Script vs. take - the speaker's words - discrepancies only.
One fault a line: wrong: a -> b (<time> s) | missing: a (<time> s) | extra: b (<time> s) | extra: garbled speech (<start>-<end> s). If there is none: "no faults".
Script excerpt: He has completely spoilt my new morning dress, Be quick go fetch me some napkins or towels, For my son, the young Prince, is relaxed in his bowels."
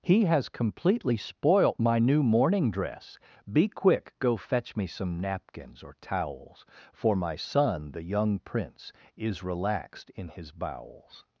no faults